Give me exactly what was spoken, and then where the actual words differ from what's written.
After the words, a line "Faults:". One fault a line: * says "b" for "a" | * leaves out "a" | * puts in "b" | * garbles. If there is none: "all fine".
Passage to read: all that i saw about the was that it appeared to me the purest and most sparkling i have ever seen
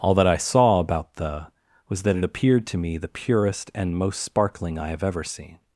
all that i saw about the was that it appeared to me the purest and most sparkling i have ever seen
Faults:
all fine